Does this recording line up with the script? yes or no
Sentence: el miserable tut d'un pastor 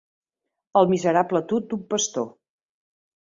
yes